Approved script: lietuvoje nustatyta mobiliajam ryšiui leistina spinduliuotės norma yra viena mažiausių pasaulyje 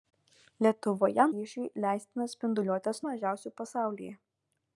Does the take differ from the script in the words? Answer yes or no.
yes